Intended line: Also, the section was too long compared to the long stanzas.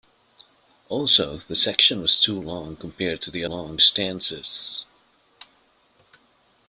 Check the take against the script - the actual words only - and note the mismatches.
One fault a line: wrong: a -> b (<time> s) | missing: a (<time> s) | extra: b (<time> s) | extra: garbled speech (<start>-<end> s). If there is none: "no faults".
no faults